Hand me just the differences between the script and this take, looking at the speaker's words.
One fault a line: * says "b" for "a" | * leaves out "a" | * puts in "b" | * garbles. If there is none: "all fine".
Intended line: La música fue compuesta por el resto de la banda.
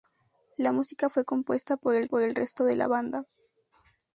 * puts in "por el"